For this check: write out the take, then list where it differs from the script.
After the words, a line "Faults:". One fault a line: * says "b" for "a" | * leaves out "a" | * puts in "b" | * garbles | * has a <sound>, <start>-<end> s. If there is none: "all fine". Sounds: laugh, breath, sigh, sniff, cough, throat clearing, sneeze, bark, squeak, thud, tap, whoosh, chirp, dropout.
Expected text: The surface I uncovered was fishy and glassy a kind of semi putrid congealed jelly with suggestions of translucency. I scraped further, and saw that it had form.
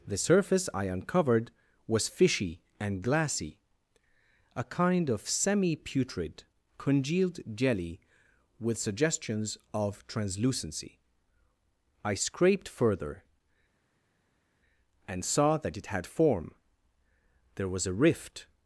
The surface I uncovered was fishy and glassy a kind of semi putrid congealed jelly with suggestions of translucency. I scraped further, and saw that it had form. There was a rift
Faults:
* puts in "There was a rift"